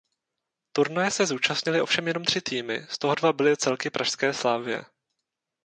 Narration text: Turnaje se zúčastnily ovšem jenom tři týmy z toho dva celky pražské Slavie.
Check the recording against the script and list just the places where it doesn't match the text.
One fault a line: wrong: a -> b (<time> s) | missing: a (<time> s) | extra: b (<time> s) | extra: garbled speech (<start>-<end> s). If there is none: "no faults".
extra: byly (3.3 s)